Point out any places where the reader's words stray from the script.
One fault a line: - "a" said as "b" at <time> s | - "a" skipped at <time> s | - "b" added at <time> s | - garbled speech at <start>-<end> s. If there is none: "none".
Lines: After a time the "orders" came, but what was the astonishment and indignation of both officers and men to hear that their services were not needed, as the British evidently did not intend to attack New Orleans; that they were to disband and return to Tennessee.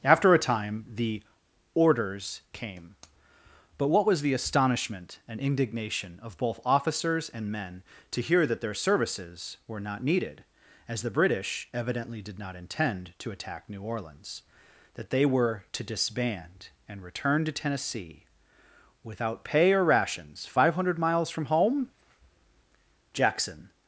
- "Without pay or rations five hundred miles from home Jackson" added at 19.0 s